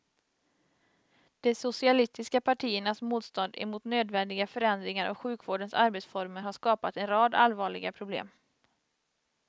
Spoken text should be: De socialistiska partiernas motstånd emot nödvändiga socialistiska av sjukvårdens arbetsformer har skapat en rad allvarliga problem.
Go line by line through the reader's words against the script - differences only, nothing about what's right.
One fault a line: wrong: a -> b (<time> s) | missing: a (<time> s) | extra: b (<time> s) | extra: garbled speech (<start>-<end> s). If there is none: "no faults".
wrong: socialistiska -> förändringar (4.5 s)